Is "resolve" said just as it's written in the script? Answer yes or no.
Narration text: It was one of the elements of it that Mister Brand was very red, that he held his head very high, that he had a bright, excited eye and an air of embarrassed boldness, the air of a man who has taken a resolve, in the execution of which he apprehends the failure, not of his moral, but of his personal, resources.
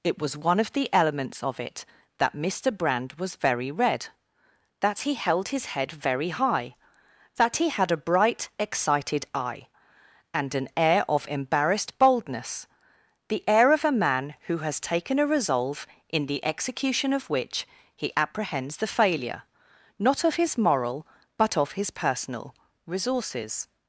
yes